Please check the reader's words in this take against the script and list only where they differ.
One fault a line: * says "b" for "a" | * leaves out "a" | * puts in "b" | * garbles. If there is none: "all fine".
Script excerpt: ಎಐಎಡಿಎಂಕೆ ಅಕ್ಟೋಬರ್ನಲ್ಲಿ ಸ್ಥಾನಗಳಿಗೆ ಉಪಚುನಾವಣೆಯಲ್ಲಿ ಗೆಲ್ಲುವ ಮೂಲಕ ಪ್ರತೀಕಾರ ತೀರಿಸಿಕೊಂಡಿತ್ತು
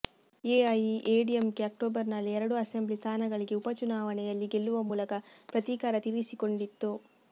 * puts in "ಎರಡು ಅಸೆಂಬ್ಲಿ"